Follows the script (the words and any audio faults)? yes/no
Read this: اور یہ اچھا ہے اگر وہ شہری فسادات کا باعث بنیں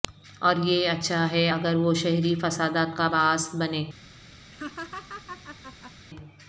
no